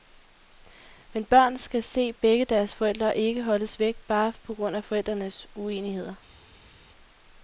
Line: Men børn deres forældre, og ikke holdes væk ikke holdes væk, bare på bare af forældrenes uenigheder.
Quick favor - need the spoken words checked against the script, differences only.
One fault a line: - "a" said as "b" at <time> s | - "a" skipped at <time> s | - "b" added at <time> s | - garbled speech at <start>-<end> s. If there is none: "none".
- "skal se begge" added at 1.6 s
- "ikke holdes væk" skipped at 4.0 s
- "bare" said as "grund" at 4.6 s